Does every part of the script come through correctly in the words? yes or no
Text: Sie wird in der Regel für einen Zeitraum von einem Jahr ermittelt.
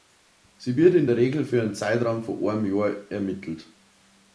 yes